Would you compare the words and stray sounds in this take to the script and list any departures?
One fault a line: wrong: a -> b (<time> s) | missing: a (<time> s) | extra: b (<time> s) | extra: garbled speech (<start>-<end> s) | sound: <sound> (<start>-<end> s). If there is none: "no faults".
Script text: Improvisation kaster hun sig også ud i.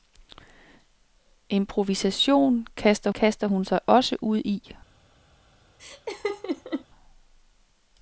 extra: kaster (3.1 s)
sound: laugh (5.8-6.9 s)